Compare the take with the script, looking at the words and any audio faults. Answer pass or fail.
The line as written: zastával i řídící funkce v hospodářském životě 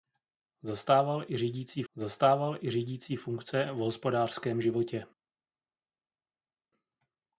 fail